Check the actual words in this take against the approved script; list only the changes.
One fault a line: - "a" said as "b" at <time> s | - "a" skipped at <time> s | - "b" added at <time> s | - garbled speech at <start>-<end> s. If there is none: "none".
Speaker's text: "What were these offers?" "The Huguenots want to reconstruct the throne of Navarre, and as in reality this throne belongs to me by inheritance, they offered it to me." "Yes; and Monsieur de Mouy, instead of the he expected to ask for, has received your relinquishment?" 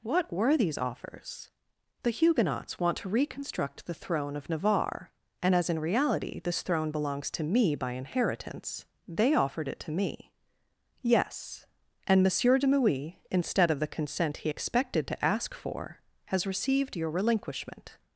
- "consent" added at 13.9 s